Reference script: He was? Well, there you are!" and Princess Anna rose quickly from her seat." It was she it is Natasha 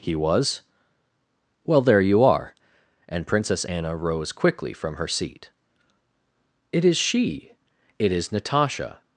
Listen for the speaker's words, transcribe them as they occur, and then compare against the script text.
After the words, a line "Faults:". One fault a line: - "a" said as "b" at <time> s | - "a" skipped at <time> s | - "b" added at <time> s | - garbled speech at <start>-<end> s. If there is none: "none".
He was? Well, there you are!" and Princess Anna rose quickly from her seat." It is she it is Natasha
Faults:
- "was" said as "is" at 6.8 s